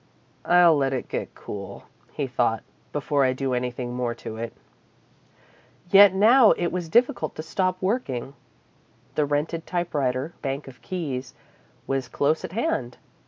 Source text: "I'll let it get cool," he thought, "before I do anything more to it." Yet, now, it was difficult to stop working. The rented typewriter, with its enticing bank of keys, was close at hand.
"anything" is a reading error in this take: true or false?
false